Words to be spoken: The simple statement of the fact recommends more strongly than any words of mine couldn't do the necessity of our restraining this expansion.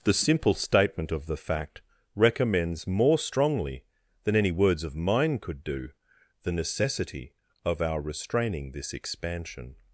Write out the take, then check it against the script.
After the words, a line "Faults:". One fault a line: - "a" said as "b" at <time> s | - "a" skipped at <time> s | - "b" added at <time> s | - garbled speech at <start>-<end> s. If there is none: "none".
The simple statement of the fact recommends more strongly than any words of mine could do the necessity of our restraining this expansion.
Faults:
- "couldn't" said as "could" at 5.4 s